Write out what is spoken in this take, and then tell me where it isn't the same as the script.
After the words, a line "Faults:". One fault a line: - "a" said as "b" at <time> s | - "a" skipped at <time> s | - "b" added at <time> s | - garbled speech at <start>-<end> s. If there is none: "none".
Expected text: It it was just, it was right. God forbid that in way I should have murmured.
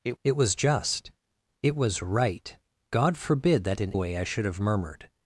It it was just, it was right. God forbid that in way I should have murmured.
Faults:
none